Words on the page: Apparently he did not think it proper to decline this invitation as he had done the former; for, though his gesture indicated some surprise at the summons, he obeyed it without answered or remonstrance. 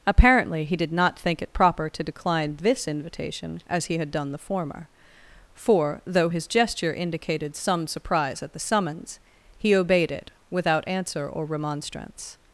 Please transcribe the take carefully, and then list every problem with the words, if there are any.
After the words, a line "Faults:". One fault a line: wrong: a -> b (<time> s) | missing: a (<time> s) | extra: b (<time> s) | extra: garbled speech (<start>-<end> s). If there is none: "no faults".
Apparently he did not think it proper to decline this invitation as he had done the former; for, though his gesture indicated some surprise at the summons, he obeyed it without answer or remonstrance.
Faults:
wrong: answered -> answer (10.9 s)